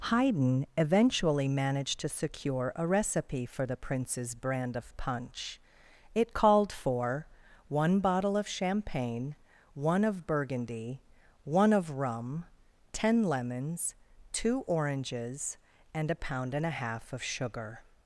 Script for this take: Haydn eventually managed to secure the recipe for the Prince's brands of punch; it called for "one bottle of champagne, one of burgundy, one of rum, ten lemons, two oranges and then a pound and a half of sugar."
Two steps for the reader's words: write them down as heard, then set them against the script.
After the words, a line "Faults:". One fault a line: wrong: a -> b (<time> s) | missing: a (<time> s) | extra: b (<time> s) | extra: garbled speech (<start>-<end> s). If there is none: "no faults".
Haydn eventually managed to secure a recipe for the Prince's brand of punch; it called for "one bottle of champagne, one of burgundy, one of rum, ten lemons, two oranges and a pound and a half of sugar."
Faults:
wrong: the -> a (2.8 s)
wrong: brands -> brand (4.3 s)
missing: then (16.1 s)